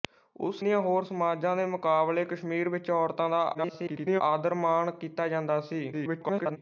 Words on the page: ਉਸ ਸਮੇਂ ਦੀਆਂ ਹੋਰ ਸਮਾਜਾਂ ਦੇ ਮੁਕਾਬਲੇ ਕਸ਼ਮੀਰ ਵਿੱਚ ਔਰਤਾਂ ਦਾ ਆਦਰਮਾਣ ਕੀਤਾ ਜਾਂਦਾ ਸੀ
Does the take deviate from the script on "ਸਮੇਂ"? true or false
true